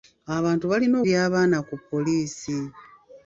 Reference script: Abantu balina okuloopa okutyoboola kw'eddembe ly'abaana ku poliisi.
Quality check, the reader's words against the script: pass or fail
fail